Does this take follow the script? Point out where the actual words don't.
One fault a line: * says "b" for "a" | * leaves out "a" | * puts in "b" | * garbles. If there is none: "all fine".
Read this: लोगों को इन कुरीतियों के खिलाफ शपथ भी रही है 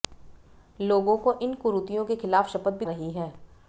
all fine